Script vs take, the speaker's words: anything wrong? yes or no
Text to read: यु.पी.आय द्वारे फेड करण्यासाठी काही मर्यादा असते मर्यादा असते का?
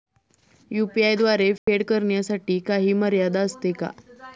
yes